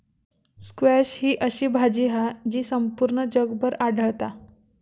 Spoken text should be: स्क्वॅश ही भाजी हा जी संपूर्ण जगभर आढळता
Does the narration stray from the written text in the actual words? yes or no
yes